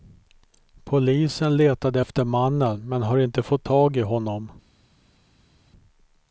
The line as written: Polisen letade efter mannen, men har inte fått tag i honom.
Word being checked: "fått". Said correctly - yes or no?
yes